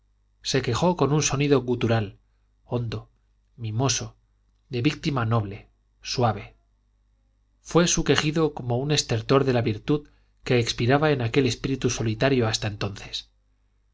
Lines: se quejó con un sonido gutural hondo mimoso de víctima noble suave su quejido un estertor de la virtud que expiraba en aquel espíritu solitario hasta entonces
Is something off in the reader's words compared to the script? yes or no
yes